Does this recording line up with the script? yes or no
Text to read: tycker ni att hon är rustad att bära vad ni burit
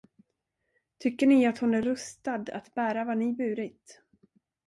yes